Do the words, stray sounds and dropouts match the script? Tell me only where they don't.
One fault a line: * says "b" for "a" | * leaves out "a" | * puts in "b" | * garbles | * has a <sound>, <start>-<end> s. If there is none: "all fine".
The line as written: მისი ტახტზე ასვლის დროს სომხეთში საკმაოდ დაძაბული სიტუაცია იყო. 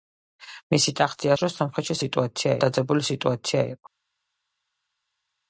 * leaves out "ასვლის"
* says "სიტუაცია" for "საკმაოდ"